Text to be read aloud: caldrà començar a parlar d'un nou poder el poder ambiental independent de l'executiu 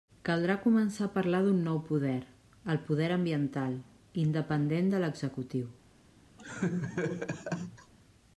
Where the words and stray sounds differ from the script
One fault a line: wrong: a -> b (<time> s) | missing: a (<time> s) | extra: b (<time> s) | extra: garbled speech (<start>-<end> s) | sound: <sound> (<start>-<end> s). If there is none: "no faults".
sound: laugh (6.4-7.9 s)